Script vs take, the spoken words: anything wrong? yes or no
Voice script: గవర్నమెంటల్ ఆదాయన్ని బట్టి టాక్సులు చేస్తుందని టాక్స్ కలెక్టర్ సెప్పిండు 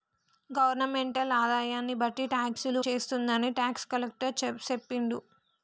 no